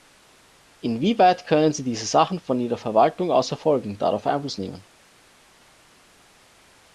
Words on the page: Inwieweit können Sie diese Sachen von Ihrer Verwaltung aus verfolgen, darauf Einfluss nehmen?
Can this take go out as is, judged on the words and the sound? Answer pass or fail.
pass